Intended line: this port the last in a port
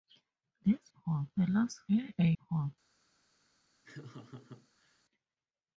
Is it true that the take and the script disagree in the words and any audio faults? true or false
true